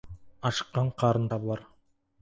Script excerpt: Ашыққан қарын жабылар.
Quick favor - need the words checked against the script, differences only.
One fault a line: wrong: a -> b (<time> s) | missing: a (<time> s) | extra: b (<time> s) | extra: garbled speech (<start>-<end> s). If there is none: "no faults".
no faults